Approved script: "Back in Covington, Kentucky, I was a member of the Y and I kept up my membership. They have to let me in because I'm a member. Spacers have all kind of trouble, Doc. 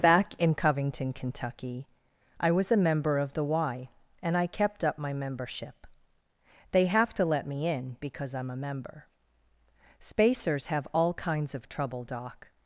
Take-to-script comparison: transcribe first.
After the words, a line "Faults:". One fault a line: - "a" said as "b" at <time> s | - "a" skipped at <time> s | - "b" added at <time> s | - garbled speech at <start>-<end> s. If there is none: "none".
"Back in Covington, Kentucky, I was a member of the Y and I kept up my membership. They have to let me in because I'm a member. Spacers have all kinds of trouble, Doc.
Faults:
- "kind" said as "kinds" at 11.1 s